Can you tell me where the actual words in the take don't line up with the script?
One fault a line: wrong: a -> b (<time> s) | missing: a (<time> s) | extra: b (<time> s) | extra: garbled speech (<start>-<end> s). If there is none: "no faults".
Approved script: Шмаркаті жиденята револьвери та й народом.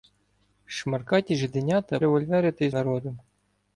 no faults